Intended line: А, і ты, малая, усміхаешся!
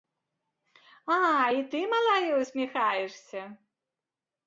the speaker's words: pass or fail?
pass